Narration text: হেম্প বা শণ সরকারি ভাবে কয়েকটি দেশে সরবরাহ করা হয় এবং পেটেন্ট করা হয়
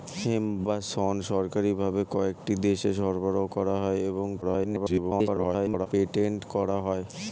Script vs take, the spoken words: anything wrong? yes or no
yes